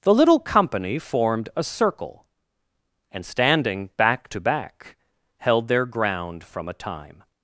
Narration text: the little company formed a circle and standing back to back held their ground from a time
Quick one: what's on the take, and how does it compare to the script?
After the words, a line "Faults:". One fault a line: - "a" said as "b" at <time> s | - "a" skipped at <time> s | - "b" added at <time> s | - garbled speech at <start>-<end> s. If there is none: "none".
the little company formed a circle and standing back to back held their ground from a time
Faults:
none